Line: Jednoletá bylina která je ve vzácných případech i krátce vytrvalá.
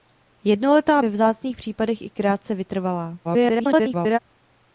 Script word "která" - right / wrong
wrong